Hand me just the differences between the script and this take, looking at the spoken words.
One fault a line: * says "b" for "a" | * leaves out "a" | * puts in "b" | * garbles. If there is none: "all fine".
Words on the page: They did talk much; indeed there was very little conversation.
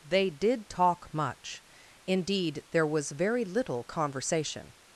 all fine